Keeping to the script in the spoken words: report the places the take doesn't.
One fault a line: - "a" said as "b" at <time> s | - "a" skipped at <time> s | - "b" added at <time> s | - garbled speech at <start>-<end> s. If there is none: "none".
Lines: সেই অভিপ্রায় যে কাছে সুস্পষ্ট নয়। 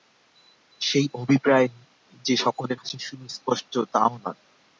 - "সকলের" added at 2.4 s
- "তাও" added at 3.9 s